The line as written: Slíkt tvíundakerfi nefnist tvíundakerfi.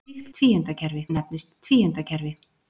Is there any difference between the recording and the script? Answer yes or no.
no